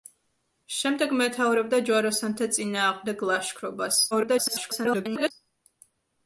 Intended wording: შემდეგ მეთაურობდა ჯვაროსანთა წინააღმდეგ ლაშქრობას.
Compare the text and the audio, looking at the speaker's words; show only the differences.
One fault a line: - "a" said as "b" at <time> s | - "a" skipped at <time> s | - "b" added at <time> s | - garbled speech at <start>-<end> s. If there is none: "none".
- garbled speech at 4.1-5.3 s